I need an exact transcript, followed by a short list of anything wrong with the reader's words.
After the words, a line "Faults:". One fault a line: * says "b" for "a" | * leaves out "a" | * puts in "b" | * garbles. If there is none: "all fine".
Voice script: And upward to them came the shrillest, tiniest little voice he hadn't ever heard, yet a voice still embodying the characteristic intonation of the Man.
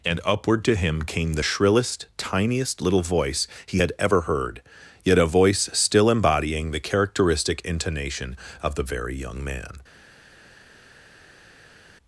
And upward to him came the shrillest, tiniest little voice he had ever heard, yet a voice still embodying the characteristic intonation of the Very Young Man.
Faults:
* says "him" for "them"
* says "had" for "hadn't"
* puts in "Very Young"